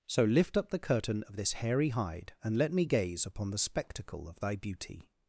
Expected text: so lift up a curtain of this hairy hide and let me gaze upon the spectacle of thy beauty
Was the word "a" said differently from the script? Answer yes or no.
yes